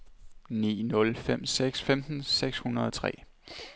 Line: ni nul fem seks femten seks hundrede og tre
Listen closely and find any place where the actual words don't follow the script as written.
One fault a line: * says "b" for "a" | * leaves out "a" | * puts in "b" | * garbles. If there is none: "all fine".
all fine